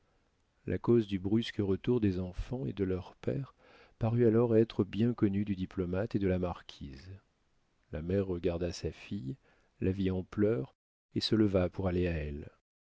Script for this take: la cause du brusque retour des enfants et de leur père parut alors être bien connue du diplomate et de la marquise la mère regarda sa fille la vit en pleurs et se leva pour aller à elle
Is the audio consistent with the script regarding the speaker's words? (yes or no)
yes